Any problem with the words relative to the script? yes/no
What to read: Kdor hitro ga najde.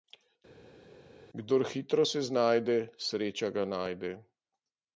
yes